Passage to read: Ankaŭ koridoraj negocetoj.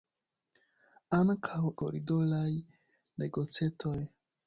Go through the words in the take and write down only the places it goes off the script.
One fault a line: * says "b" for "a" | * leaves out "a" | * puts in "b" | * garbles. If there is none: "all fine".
all fine